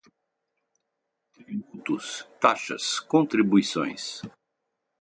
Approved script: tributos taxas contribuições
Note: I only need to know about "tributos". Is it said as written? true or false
true